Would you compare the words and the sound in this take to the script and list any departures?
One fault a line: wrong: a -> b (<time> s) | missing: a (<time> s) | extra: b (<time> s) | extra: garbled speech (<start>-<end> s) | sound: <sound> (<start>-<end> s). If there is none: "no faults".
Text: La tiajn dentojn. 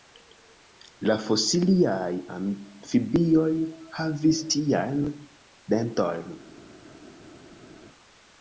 extra: fosiliaj amfibioj havis (1.2 s)